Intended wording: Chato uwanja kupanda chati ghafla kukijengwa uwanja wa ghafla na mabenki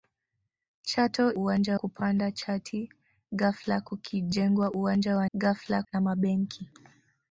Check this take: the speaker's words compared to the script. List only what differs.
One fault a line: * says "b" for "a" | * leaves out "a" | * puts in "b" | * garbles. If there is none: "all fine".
all fine